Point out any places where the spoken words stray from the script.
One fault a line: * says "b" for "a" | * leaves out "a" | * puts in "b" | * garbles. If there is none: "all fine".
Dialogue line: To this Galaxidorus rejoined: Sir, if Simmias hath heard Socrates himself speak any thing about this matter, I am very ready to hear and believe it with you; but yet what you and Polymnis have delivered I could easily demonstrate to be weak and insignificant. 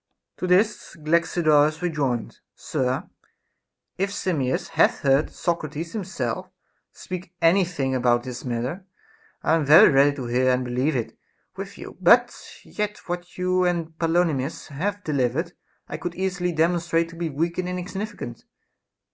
all fine